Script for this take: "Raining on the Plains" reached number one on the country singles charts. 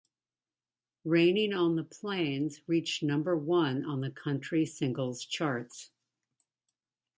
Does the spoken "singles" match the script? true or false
true